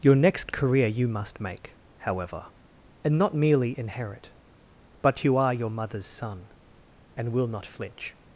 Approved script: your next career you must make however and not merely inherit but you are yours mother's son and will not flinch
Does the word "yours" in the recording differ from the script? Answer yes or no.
yes